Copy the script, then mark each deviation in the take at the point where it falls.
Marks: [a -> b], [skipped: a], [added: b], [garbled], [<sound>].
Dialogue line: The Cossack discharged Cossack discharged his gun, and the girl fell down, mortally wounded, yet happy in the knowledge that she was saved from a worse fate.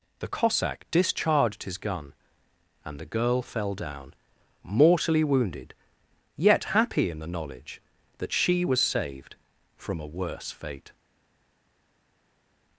The Cossack discharged [skipped: Cossack discharged] his gun, and the girl fell down, mortally wounded, yet happy in the knowledge that she was saved from a worse fate.